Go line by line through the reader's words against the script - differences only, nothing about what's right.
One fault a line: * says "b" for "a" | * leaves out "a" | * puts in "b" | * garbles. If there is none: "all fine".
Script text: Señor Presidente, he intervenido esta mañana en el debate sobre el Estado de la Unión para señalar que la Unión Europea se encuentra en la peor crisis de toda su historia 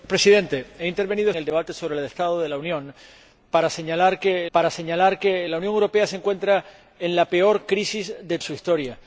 * leaves out "esta mañana"
* puts in "para señalar que"
* leaves out "toda"